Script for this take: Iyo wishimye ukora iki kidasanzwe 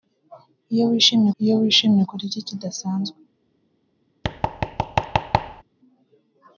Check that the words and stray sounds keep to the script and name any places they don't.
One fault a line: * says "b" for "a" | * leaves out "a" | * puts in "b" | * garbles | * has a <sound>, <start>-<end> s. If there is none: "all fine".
* puts in "iyo wishimye"
* has a thud, 4.2-5.6 s